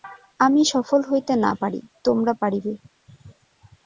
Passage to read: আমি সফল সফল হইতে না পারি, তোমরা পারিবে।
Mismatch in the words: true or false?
true